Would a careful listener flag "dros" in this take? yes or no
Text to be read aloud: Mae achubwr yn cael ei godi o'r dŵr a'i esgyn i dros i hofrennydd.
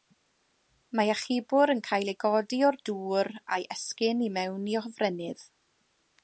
yes